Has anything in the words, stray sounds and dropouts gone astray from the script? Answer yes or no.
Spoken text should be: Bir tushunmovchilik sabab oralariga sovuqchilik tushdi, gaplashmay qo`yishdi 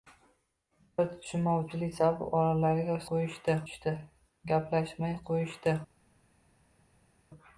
yes